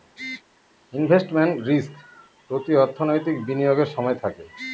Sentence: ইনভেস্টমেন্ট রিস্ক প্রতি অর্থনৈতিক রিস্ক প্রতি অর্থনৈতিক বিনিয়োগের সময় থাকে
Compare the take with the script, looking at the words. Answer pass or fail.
fail